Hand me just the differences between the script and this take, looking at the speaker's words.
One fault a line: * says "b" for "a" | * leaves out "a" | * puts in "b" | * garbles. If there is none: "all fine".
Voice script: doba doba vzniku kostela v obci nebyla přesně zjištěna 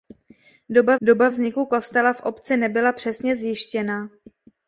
all fine